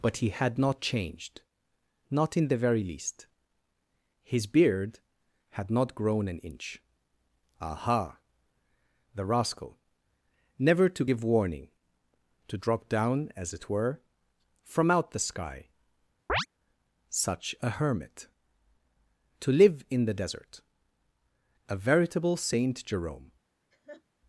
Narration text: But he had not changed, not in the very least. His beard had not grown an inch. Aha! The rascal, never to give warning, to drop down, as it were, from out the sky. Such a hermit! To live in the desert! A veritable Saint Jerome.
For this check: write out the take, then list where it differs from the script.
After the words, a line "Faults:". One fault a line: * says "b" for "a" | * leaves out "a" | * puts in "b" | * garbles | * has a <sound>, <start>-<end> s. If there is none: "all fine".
But he had not changed, not in the very least. His beard had not grown an inch. Aha! The rascal, never to give warning, to drop down, as it were, from out the sky. Such a hermit! To live in the desert! A veritable Saint Jerome.
Faults:
* has a chirp, 16.3-16.5 s
* has a laugh, 23.7-24.0 s